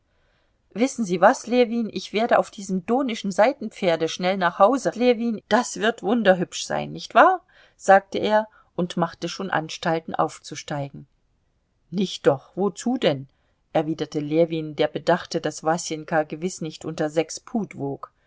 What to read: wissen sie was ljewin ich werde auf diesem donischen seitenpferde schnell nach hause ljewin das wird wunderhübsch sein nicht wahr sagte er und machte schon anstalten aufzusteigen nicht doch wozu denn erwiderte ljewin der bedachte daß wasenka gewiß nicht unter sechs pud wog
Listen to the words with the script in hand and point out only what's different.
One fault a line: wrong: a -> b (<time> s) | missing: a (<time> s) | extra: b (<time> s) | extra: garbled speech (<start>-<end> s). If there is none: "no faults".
no faults